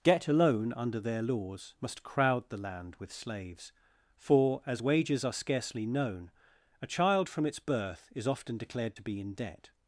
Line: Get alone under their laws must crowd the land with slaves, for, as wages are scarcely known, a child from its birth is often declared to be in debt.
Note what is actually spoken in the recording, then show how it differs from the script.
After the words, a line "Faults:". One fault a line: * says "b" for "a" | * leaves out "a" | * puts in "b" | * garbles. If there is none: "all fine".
Get alone under their laws must crowd the land with slaves, for, as wages are scarcely known, a child from its birth is often declared to be in debt.
Faults:
all fine